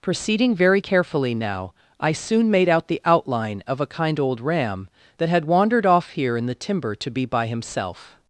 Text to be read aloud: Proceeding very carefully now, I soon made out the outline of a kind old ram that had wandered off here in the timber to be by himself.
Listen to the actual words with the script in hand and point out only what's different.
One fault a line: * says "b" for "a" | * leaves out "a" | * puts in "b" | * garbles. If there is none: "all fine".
all fine